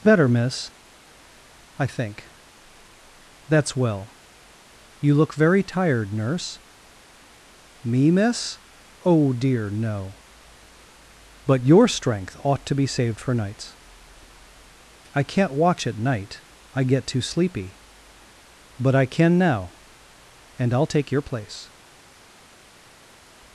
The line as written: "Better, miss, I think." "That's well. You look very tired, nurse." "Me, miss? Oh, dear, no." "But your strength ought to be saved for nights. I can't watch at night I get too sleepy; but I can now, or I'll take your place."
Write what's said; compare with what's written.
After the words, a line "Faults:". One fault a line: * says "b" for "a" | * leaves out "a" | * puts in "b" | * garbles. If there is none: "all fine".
"Better, miss, I think." "That's well. You look very tired, nurse." "Me, miss? Oh, dear, no." "But your strength ought to be saved for nights. I can't watch at night I get too sleepy; but I can now, and I'll take your place."
Faults:
* says "and" for "or"